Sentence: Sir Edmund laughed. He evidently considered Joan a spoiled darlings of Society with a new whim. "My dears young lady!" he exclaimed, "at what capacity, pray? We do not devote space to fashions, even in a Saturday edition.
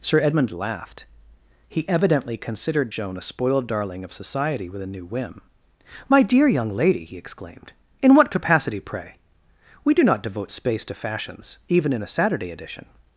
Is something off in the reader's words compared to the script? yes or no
yes